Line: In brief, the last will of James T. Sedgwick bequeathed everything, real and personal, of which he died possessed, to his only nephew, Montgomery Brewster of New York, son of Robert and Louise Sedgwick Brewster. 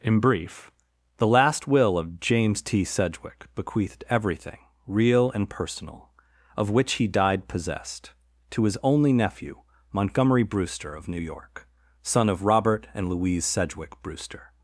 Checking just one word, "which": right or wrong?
right